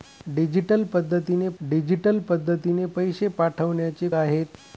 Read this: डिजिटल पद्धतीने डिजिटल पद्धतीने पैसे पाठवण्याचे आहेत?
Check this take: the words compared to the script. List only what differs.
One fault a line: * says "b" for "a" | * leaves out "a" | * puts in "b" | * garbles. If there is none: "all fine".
all fine